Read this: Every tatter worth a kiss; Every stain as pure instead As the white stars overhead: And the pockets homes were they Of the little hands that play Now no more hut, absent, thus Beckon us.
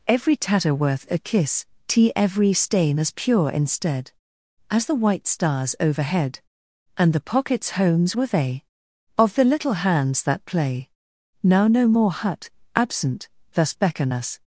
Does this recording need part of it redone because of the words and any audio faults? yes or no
yes